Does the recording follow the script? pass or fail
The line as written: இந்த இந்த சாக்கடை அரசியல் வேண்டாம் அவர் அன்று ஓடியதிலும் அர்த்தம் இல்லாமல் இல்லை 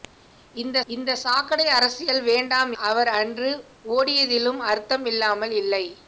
pass